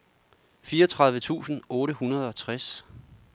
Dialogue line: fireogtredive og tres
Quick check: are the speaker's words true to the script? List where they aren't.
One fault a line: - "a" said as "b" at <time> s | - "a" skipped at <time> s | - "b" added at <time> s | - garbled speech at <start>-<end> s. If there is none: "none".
- "tusind otte hundrede" added at 1.2 s